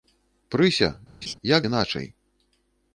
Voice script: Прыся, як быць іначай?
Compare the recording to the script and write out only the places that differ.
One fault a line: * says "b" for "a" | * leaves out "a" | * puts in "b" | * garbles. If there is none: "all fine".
* leaves out "быць"